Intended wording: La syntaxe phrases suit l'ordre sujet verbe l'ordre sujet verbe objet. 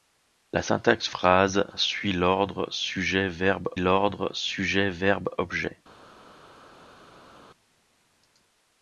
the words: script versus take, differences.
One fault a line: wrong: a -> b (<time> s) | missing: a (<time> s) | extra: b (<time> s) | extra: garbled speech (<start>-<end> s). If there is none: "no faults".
no faults